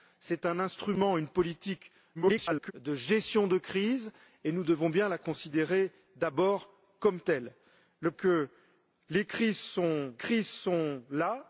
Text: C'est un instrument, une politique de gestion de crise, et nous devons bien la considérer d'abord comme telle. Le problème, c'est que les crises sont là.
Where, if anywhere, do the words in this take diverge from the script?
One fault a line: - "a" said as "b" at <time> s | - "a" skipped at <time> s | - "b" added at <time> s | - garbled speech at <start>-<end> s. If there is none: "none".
- garbled speech at 2.1-2.7 s
- "problème c'est que les" said as "que les crises sont" at 8.1 s